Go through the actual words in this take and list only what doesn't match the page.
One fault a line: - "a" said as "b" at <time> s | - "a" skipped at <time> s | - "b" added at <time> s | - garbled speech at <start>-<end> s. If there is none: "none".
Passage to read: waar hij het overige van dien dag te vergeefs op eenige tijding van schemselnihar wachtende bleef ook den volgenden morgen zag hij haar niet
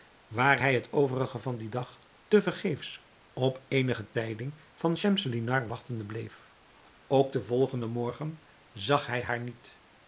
none